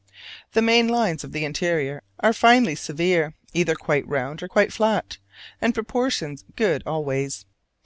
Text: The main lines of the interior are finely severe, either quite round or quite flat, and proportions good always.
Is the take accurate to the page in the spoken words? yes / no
yes